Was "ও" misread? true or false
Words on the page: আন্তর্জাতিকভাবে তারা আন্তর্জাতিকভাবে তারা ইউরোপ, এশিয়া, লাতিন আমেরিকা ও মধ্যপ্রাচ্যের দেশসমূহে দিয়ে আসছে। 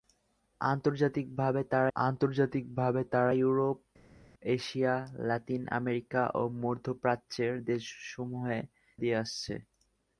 false